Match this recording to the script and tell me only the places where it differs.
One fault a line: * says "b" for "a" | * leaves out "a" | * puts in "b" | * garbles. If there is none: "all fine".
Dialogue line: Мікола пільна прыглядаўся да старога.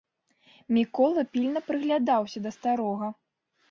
all fine